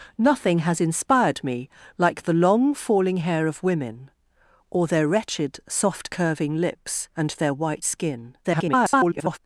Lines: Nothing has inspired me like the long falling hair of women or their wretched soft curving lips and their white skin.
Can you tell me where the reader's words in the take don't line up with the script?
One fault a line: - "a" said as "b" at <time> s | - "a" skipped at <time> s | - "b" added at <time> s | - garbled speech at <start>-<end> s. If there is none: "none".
- garbled speech at 8.4-9.4 s